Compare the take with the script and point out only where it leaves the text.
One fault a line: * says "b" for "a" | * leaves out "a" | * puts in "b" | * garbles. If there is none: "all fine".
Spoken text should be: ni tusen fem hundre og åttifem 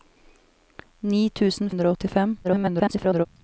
* leaves out "fem"
* garbles